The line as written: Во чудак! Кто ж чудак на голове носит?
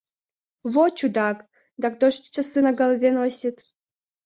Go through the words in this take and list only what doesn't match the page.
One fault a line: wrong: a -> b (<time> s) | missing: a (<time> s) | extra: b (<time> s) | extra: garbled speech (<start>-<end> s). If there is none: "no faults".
extra: Да (1.8 s)
wrong: чудак -> часы (2.3 s)